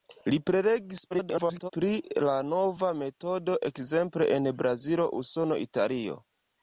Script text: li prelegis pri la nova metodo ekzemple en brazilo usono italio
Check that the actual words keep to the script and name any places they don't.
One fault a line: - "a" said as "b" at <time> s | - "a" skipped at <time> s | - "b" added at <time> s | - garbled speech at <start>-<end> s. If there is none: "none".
- garbled speech at 1.1-1.7 s